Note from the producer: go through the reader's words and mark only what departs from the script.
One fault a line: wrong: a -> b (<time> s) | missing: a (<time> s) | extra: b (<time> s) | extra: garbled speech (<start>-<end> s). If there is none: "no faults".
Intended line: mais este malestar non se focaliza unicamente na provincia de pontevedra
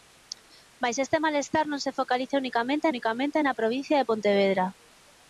extra: unicamente (2.9 s)